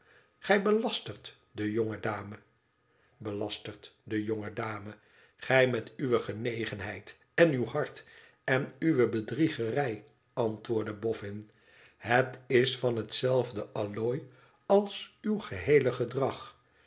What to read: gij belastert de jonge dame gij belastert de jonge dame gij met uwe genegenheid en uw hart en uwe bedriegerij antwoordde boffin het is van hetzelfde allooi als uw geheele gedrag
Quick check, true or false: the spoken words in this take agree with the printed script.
false